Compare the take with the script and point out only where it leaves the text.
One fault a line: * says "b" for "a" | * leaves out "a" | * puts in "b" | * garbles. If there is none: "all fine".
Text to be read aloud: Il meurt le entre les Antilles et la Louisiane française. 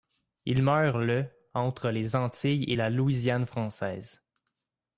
all fine